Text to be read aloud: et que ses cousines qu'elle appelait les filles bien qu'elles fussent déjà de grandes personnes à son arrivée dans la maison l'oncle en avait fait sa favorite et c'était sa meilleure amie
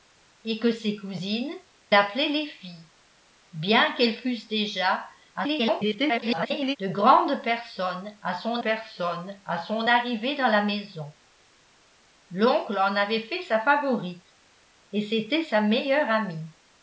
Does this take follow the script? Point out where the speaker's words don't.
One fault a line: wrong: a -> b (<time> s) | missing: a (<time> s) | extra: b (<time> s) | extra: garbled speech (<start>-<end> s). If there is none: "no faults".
missing: qu'elle (1.5 s)
extra: garbled speech (5.3-6.8 s)
extra: personnes à son (8.6 s)